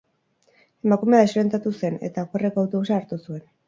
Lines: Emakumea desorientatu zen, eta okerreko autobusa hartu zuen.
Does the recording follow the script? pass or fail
pass